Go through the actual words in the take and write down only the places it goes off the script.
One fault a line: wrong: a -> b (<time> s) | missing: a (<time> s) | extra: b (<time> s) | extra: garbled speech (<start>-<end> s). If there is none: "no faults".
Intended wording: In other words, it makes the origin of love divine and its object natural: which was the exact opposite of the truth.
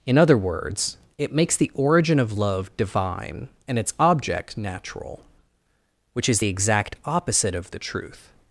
wrong: was -> is (6.3 s)